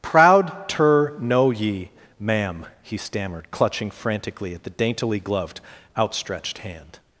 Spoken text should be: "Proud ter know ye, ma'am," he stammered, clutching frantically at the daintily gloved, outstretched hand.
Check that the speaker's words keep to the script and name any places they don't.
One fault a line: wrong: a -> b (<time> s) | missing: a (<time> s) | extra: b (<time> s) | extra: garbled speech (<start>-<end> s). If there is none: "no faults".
no faults